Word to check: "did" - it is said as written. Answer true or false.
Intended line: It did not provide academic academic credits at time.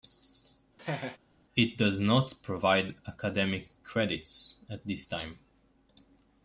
false